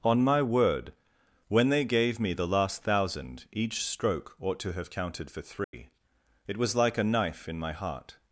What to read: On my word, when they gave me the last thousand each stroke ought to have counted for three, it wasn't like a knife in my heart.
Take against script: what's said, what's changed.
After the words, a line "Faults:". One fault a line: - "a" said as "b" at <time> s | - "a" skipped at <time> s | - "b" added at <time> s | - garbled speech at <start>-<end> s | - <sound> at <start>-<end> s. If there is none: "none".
On my word, when they gave me the last thousand each stroke ought to have counted for three, it was like a knife in my heart.
Faults:
- dropout at 5.6-5.7 s
- "wasn't" said as "was" at 6.5 s